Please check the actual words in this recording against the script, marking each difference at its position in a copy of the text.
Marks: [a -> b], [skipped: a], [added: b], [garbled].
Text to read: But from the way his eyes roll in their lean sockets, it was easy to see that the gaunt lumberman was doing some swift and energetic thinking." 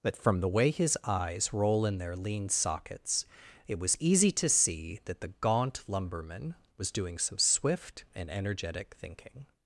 But from the way his eyes roll in their lean sockets, it was easy to see that the gaunt lumberman was doing some swift and energetic thinking."